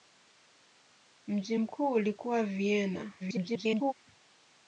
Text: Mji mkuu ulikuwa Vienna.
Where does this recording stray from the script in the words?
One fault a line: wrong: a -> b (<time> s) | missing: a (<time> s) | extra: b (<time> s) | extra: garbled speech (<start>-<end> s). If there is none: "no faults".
extra: garbled speech (3.2-3.9 s)